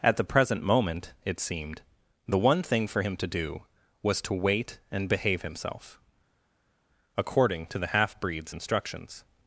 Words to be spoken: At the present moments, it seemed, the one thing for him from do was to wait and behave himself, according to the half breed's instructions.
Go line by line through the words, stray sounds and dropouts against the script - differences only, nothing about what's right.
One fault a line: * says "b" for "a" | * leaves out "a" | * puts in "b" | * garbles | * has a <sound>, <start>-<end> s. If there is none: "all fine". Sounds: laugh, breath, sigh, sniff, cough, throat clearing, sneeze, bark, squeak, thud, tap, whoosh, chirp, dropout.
* says "moment" for "moments"
* says "to" for "from"